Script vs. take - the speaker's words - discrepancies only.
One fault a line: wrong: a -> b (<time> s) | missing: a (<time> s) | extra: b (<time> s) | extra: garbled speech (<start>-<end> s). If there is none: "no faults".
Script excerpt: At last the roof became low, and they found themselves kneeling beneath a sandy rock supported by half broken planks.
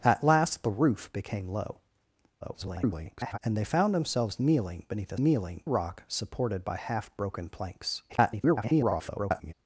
extra: garbled speech (2.4-3.4 s)
wrong: sandy -> kneeling (5.2 s)
extra: garbled speech (8.1-9.5 s)